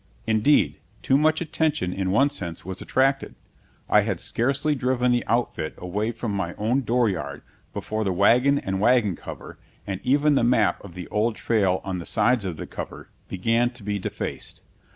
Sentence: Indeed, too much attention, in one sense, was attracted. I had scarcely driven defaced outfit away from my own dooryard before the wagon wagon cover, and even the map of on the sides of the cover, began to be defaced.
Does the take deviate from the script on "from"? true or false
false